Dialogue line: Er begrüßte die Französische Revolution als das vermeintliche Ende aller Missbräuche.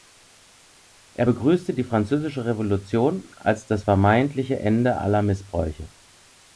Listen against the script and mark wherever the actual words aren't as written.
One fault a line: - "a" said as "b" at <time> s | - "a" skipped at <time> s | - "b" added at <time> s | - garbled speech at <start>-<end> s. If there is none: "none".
none